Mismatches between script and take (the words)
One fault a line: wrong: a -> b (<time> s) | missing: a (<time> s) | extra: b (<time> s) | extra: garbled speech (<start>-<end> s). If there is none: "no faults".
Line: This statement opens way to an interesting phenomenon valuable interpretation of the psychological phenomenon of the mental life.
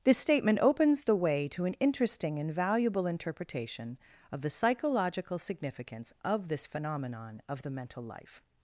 extra: the (1.0 s)
wrong: phenomenon -> and (2.4 s)
extra: significance of this (5.4 s)